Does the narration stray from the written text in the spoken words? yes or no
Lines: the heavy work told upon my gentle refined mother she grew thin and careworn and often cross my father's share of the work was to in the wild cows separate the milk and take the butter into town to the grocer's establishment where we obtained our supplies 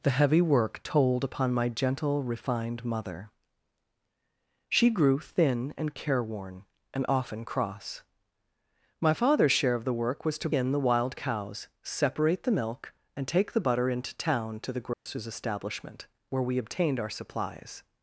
no